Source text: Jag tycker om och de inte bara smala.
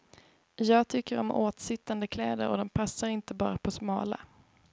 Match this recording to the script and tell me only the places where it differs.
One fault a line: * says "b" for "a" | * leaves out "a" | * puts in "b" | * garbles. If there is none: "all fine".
* puts in "åtsittande kläder"
* puts in "passar"
* puts in "på"